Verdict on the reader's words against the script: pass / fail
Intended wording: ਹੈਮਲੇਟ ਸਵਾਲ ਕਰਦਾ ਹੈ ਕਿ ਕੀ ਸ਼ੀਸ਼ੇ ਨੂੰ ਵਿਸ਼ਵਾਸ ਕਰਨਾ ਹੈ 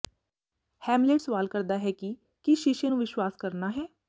pass